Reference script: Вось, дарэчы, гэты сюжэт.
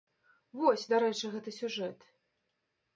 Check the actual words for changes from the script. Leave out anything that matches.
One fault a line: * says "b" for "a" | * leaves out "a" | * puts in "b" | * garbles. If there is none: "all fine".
all fine